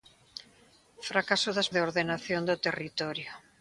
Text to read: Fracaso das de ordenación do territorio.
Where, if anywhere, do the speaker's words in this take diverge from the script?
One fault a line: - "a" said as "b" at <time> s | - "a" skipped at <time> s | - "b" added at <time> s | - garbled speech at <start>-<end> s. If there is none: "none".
none